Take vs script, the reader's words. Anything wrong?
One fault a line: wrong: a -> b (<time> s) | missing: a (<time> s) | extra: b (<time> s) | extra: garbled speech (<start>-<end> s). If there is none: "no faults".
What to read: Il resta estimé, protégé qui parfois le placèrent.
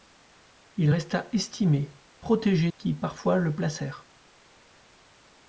no faults